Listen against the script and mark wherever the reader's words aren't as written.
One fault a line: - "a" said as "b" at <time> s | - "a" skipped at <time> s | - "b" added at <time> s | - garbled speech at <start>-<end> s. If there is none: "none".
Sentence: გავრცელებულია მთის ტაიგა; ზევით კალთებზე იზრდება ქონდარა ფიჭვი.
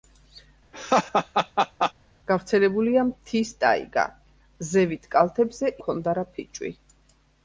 - "იზრდება" skipped at 5.8 s